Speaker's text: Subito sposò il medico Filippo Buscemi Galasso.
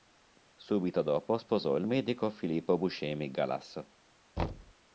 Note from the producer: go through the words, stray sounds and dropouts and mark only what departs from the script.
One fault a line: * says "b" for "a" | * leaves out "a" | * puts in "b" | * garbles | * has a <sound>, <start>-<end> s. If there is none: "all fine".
* puts in "dopo"
* has a thud, 4.4-4.7 s